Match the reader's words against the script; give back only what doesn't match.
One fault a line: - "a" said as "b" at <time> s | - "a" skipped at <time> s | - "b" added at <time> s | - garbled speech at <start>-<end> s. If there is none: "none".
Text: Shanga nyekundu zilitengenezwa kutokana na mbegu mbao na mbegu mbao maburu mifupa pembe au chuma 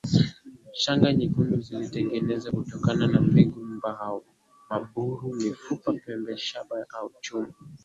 - "na mbegu mbao" skipped at 4.2 s
- "shaba" added at 6.4 s